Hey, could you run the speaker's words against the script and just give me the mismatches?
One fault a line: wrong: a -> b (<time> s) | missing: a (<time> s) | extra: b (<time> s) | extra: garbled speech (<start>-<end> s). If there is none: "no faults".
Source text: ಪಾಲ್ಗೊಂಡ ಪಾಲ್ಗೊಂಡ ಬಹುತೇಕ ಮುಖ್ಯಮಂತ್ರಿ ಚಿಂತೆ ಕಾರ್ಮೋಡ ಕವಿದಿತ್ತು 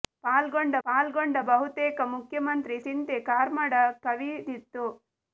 no faults